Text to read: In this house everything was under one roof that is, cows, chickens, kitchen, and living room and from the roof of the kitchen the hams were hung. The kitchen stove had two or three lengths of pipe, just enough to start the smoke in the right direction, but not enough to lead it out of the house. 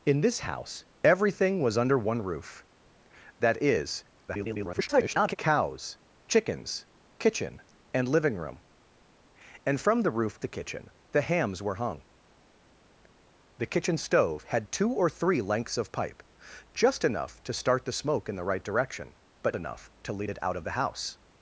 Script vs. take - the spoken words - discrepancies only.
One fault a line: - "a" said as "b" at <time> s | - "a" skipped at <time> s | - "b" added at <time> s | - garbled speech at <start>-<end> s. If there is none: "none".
- garbled speech at 4.3-5.4 s
- "of" skipped at 10.4 s
- "not" skipped at 19.6 s